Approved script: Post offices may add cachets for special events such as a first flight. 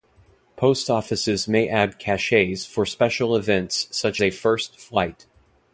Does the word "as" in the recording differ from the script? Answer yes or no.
yes